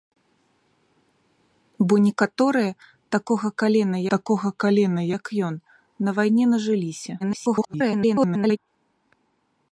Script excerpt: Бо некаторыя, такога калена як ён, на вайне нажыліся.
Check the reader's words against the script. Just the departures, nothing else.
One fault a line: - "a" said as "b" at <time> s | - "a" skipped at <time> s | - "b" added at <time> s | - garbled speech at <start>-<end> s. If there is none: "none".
- "такога калена" added at 4.2 s
- garbled speech at 7.2-8.6 s